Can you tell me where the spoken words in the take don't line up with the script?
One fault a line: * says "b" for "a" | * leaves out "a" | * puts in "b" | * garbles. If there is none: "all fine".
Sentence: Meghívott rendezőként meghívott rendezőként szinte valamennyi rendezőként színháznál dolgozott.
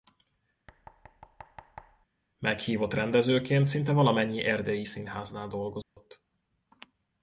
* leaves out "meghívott rendezőként"
* says "erdélyi" for "rendezőként"